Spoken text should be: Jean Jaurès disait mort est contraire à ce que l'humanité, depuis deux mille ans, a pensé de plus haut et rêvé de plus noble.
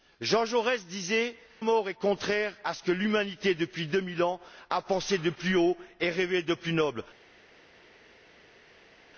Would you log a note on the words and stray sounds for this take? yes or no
no